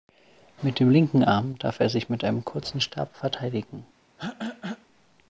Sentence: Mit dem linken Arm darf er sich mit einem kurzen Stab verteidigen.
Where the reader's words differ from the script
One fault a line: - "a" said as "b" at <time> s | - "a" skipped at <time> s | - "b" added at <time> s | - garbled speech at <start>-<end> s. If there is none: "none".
none